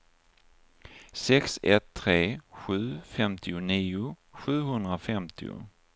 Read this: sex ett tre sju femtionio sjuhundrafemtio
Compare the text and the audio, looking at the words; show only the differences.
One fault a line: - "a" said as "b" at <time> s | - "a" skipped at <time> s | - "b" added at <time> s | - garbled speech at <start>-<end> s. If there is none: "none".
none